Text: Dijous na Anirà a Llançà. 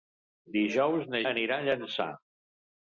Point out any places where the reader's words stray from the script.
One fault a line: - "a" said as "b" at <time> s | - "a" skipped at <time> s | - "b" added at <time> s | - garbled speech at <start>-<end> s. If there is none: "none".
none